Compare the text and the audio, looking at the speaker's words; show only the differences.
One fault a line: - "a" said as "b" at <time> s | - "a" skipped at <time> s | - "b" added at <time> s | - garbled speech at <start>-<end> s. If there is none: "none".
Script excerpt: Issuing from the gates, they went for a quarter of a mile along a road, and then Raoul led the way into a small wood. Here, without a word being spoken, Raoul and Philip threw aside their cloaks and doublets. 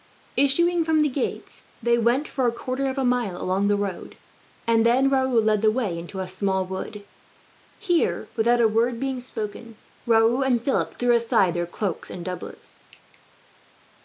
- "a" said as "the" at 3.7 s